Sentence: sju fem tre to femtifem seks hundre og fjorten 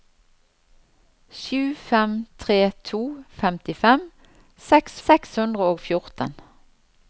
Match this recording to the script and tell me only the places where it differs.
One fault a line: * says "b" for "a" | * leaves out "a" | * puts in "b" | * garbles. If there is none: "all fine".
* puts in "seks"